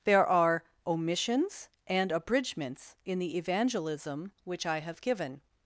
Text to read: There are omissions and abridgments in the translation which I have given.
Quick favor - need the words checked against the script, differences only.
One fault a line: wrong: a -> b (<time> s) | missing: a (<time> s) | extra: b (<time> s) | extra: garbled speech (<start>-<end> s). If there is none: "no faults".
wrong: translation -> evangelism (3.4 s)